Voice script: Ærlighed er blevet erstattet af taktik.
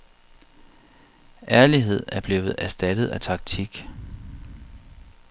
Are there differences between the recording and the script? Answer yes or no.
no